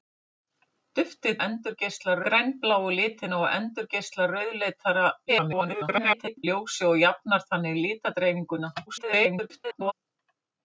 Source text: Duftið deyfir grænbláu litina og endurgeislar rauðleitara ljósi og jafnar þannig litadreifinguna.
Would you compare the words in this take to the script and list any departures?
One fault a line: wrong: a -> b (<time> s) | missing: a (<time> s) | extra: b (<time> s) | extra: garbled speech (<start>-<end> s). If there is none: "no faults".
wrong: deyfir -> endurgeislar (1.5 s)
extra: garbled speech (5.3-6.4 s)
extra: garbled speech (8.9-9.9 s)